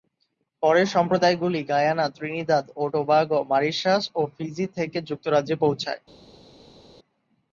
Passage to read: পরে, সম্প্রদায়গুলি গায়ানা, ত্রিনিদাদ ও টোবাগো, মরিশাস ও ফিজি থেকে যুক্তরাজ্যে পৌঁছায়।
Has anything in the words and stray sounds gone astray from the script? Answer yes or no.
no